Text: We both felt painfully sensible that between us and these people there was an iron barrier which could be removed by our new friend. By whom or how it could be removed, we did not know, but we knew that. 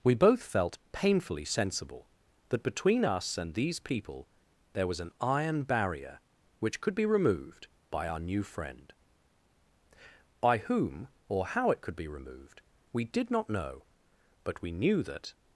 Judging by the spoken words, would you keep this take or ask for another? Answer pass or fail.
pass